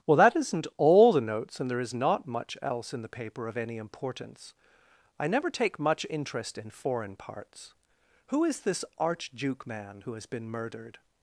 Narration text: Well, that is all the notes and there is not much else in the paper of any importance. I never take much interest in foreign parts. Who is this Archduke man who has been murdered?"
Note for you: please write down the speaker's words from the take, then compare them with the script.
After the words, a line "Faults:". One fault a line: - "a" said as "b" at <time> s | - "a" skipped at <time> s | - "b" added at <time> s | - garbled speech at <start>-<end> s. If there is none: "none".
Well, that isn't all the notes and there is not much else in the paper of any importance. I never take much interest in foreign parts. Who is this Archduke man who has been murdered?"
Faults:
- "is" said as "isn't" at 0.3 s